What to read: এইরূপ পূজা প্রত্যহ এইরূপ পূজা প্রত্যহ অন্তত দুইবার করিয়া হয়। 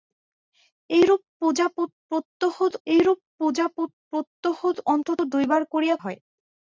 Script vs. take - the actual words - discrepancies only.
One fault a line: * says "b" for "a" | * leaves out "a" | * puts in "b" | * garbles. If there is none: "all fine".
all fine